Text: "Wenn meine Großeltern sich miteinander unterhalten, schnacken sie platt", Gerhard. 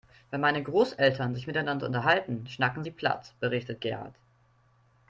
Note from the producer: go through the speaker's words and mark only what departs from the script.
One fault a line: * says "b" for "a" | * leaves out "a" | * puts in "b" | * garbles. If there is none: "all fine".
* puts in "berichtet"